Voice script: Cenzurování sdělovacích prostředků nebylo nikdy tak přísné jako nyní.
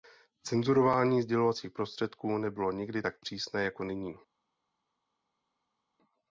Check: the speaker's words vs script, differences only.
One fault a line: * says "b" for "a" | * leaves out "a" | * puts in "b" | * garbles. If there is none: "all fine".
all fine